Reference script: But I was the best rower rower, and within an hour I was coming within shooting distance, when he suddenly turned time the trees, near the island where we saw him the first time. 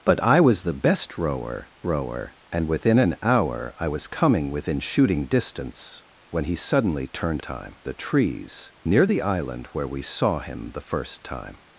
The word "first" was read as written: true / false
true